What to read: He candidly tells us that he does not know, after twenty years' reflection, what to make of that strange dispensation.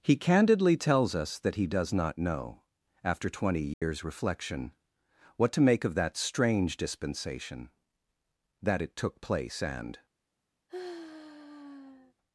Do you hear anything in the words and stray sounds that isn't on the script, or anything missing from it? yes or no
yes